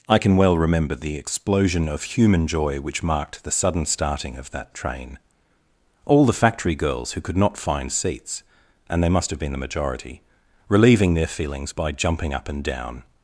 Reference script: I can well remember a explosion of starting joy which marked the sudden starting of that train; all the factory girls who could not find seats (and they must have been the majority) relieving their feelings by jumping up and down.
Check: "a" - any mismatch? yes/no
yes